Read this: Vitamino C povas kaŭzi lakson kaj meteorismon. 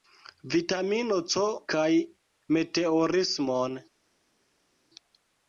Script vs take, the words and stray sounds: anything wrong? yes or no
yes